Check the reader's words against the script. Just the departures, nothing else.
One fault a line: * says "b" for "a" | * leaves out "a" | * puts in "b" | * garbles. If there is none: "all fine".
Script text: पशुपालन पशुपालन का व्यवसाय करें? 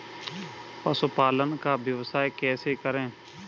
* leaves out "पशुपालन"
* puts in "कैसे"